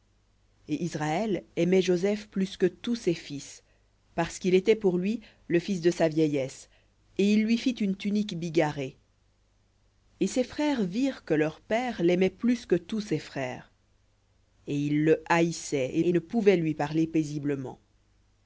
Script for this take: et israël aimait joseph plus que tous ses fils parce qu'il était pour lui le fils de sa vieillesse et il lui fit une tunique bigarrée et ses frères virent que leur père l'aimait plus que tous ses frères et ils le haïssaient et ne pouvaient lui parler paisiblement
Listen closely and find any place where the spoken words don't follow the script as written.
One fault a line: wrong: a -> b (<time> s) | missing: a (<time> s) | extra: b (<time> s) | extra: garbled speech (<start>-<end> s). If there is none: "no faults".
extra: et (16.0 s)